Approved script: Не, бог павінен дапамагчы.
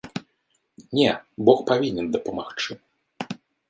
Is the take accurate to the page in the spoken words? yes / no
yes